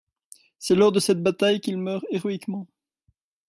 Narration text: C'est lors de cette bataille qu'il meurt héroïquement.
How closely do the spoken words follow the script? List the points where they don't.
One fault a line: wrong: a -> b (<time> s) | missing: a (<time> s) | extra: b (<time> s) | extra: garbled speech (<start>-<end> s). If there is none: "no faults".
no faults